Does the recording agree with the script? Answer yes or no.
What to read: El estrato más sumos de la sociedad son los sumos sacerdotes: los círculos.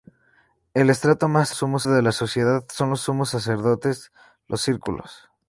yes